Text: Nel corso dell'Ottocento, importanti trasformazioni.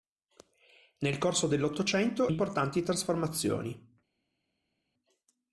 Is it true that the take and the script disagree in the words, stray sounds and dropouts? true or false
false